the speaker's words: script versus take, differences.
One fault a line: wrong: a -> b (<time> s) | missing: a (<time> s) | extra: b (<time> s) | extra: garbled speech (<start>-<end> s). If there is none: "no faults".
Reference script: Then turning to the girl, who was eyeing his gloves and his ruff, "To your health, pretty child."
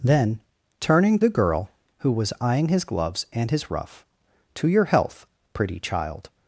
missing: to (1.2 s)